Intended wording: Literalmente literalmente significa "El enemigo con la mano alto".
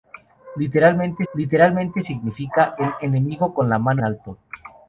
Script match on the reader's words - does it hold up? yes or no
yes